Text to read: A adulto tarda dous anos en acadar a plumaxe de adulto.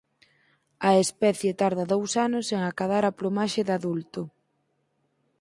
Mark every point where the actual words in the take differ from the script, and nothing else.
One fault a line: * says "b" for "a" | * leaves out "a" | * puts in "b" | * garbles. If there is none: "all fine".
* says "especie" for "adulto"